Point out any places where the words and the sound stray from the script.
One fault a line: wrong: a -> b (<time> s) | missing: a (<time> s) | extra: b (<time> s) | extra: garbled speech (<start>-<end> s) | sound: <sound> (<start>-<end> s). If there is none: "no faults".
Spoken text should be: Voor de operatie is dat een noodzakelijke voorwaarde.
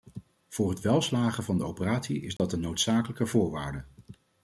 extra: het welslagen van (0.7 s)
sound: dropout (2.4-2.4 s)